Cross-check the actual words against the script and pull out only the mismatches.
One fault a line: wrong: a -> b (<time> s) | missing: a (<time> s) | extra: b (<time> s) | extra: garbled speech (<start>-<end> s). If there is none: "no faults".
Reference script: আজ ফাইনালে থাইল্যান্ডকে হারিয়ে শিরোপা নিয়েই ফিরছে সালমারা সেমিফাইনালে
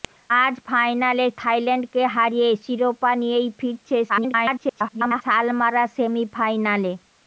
extra: garbled speech (4.1-5.2 s)